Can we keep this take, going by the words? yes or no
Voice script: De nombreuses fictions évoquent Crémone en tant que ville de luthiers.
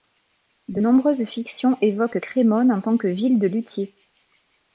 yes